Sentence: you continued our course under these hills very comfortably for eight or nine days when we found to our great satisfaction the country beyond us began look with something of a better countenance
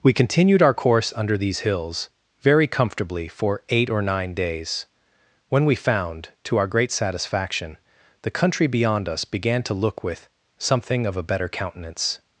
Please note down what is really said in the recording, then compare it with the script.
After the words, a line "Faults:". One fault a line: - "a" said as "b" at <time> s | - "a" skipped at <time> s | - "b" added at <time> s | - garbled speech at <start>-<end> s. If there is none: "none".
we continued our course under these hills very comfortably for eight or nine days when we found to our great satisfaction the country beyond us began to look with something of a better countenance
Faults:
- "you" said as "we" at 0.0 s
- "to" added at 9.6 s